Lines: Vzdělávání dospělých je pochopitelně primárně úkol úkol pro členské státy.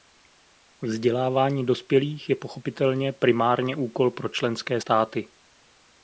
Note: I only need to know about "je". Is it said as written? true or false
true